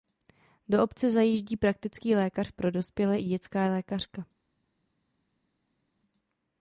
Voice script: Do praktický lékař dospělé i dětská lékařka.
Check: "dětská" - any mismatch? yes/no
no